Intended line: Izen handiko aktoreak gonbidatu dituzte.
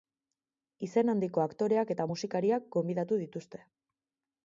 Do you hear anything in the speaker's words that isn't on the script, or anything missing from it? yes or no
yes